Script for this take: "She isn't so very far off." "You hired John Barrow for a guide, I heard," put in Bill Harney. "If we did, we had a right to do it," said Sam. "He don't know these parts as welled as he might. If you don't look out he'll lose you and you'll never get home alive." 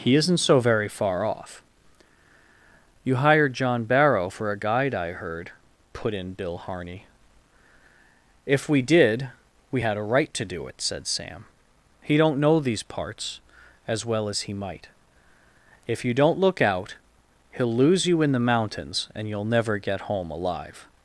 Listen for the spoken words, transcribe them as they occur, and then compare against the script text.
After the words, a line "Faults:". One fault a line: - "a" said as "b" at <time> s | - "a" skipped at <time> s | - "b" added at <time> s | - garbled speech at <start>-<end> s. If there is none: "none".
"He isn't so very far off." "You hired John Barrow for a guide, I heard," put in Bill Harney. "If we did, we had a right to do it," said Sam. "He don't know these parts as well as he might. If you don't look out he'll lose you in the mountains, and you'll never get home alive."
Faults:
- "She" said as "He" at 0.0 s
- "welled" said as "well" at 14.0 s
- "in the mountains" added at 18.2 s